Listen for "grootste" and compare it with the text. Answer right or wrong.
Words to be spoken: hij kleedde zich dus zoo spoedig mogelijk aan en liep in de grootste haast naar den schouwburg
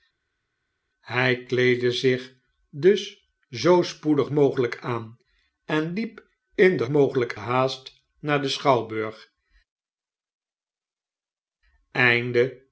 wrong